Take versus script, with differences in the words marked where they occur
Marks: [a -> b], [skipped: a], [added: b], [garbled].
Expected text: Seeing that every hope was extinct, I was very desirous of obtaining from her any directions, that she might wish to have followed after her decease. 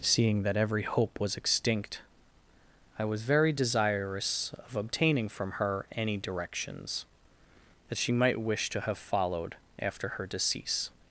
Seeing that every hope was extinct, I was very desirous of obtaining from her any directions, that she might wish to have followed after her decease.